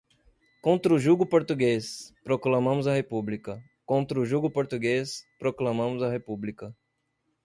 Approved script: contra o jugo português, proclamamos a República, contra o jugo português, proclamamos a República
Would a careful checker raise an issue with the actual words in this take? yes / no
no